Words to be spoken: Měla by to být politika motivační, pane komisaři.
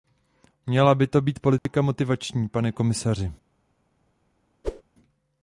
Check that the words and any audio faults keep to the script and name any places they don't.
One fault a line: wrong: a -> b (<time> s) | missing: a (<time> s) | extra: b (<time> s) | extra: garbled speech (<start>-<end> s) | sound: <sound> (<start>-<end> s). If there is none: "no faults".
sound: dropout (1.6-1.7 s)
sound: whoosh (4.6-4.8 s)